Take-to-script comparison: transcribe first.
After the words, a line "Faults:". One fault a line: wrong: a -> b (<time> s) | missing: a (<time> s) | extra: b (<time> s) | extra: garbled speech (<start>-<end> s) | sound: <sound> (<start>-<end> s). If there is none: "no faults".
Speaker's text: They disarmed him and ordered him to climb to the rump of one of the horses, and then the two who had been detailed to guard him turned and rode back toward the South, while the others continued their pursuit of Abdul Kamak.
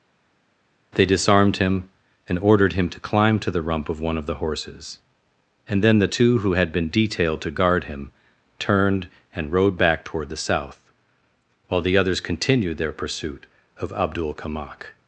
They disarmed him and ordered him to climb to the rump of one of the horses, and then the two who had been detailed to guard him turned and rode back toward the South, while the others continued their pursuit of Abdul Kamak.
Faults:
no faults